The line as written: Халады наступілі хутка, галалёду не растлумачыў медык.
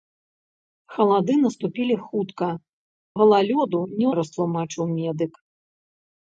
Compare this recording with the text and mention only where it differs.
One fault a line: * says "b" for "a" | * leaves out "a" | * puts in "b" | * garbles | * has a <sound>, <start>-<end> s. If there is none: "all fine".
all fine